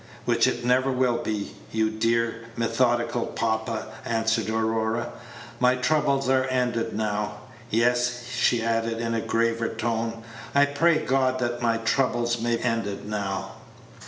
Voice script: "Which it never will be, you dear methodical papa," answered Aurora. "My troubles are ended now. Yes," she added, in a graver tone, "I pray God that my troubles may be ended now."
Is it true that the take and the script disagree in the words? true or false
true